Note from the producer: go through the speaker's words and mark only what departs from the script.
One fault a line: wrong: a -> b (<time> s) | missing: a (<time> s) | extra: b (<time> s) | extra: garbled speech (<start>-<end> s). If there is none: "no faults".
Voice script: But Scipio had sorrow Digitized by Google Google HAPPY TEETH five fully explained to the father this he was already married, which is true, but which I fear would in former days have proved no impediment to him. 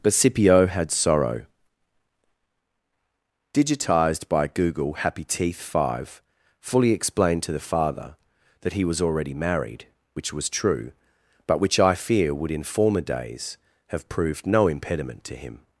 missing: Google (4.9 s)
wrong: this -> that (8.6 s)
wrong: is -> was (10.3 s)